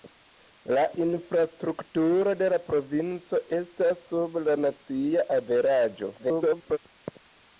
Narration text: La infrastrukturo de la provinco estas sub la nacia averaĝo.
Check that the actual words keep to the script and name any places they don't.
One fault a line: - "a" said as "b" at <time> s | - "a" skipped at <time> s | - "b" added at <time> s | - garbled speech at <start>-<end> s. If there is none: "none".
- garbled speech at 6.2-6.8 s